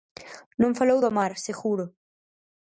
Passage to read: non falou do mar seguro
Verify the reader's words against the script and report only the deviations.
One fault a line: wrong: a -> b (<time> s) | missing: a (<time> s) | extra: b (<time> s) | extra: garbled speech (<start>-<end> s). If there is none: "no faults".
no faults